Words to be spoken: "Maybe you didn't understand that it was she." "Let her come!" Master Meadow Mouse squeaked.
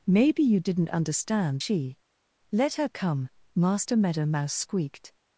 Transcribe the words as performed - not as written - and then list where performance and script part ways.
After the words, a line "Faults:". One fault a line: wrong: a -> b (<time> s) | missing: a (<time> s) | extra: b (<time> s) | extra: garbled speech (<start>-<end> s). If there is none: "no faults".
"Maybe you didn't understand she." "Let her come!" Master Meadow Mouse squeaked.
Faults:
missing: that it was (1.6 s)